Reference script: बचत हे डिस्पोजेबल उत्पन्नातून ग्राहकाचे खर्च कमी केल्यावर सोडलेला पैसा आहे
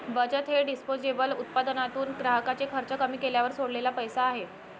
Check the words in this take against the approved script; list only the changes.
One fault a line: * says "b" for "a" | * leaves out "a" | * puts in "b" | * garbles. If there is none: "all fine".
all fine